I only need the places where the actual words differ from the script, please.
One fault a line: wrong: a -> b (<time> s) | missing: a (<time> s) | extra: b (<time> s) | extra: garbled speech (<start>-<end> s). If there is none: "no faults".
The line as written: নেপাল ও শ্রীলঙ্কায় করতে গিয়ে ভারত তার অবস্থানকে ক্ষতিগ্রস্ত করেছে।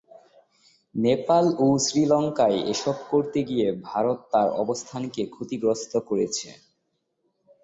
extra: এসব (2.7 s)